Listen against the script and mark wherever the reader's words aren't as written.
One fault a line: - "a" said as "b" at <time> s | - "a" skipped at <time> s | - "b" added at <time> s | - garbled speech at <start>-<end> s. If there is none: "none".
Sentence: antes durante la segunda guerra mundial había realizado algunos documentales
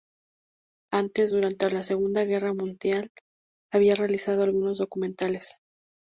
none